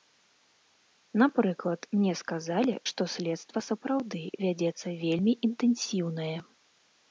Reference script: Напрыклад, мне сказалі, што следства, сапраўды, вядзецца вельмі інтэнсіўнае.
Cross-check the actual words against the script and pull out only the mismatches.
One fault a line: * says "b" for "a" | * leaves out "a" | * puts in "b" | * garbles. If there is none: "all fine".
all fine